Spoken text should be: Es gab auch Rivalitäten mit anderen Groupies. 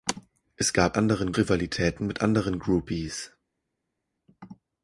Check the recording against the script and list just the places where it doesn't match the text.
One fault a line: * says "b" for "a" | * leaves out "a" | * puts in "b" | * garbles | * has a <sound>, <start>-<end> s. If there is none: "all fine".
* says "anderen" for "auch"